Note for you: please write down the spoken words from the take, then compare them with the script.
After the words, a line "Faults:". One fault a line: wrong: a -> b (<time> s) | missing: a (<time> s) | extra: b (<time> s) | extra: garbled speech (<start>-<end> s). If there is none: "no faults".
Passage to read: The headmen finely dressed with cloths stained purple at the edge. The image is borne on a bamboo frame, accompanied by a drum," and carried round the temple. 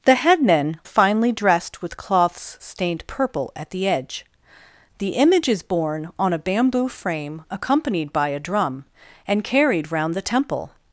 The headmen finely dressed with cloths stained purple at the edge. The image is borne on a bamboo frame, accompanied by a drum," and carried round the temple.
Faults:
no faults